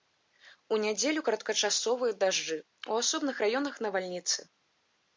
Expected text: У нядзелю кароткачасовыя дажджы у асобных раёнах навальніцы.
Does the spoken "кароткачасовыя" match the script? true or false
true